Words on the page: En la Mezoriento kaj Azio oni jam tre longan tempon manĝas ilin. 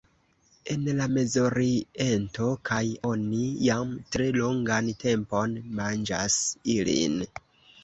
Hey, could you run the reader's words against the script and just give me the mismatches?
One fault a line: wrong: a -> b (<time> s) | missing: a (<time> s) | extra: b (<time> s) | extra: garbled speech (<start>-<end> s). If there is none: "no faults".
missing: Azio (2.8 s)